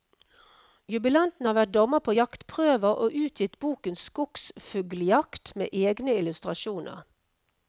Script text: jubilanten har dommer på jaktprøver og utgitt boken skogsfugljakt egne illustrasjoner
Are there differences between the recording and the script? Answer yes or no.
yes